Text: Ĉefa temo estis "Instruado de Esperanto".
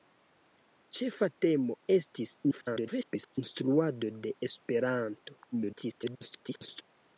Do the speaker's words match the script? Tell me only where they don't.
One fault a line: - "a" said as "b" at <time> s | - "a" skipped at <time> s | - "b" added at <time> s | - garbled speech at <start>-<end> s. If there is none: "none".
- garbled speech at 2.5-3.4 s
- garbled speech at 5.5-6.8 s